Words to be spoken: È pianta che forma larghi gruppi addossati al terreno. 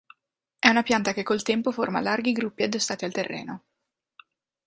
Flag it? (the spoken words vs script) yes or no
yes